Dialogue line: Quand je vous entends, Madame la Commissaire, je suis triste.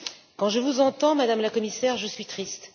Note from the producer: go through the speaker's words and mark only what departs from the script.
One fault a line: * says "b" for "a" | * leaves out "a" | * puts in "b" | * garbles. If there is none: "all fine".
all fine